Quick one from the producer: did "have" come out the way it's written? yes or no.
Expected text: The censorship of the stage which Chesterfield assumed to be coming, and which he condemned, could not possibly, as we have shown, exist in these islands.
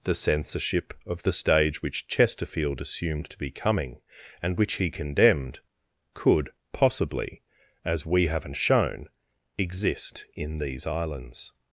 no